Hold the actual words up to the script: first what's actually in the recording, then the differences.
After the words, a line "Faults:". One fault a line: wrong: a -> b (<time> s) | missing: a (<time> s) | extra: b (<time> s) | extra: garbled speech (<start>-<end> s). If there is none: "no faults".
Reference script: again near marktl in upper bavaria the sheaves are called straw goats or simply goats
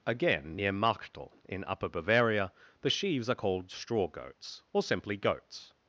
again near marktl in upper bavaria the sheaves are called straw goats or simply goats
Faults:
no faults